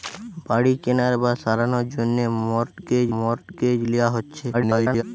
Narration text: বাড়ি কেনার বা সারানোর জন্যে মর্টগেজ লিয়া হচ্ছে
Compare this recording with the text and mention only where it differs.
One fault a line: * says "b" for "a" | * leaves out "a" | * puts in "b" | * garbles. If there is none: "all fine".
* puts in "মর্টগেজ"
* garbles